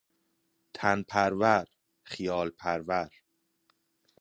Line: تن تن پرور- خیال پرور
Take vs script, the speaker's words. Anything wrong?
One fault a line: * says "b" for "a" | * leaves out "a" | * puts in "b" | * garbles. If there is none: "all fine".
* leaves out "تن"